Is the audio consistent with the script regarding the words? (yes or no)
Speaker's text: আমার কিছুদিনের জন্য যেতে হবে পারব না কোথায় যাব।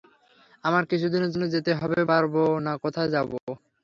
yes